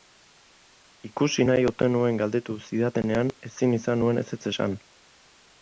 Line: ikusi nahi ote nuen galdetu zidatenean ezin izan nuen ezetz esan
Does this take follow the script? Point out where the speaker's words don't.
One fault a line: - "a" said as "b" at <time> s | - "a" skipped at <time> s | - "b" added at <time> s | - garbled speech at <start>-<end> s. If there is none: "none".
none